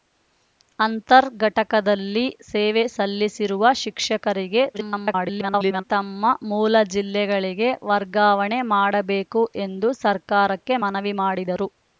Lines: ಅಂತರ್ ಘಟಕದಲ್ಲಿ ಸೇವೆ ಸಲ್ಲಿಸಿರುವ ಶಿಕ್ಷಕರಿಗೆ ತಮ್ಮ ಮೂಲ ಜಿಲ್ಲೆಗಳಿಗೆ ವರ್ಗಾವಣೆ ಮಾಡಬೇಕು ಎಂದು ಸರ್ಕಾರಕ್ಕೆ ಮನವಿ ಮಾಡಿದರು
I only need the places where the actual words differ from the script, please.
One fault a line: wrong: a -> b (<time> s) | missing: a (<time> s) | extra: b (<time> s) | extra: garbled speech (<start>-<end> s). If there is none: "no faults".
extra: garbled speech (4.7-5.8 s)